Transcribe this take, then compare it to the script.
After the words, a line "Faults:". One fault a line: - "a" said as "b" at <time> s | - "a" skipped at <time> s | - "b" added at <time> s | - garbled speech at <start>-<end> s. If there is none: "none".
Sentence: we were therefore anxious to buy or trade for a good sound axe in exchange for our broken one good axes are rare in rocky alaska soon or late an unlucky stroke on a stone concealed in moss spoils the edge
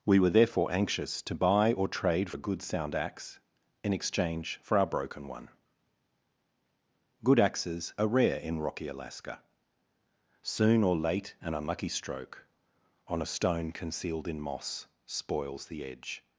we were therefore anxious to buy or trade a good sound axe in exchange for our broken one good axes are rare in rocky alaska soon or late an unlucky stroke on a stone concealed in moss spoils the edge
Faults:
- "for" skipped at 2.3 s